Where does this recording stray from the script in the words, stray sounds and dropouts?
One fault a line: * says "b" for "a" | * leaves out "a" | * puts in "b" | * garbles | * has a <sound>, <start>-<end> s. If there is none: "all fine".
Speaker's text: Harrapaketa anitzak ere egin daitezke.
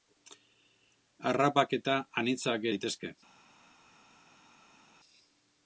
* leaves out "ere egin"